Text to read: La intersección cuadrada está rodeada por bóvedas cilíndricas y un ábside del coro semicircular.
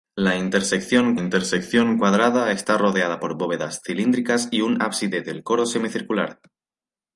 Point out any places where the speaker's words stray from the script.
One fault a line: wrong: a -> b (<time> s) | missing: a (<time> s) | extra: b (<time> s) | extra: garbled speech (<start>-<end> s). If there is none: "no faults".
extra: intersección (1.1 s)